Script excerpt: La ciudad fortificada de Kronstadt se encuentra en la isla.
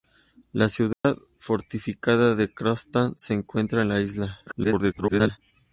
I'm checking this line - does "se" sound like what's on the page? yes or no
yes